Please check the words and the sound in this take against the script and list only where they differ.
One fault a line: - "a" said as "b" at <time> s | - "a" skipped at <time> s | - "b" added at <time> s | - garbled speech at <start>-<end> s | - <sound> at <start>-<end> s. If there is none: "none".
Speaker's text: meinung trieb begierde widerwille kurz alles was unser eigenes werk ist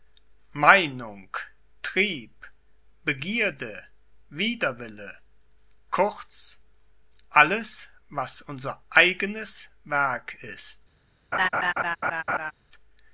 - laugh at 11.3-12.5 s